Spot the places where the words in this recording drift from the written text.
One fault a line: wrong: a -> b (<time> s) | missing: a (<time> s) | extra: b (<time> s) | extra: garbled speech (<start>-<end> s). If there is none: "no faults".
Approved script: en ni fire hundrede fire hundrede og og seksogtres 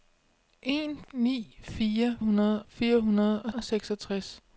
no faults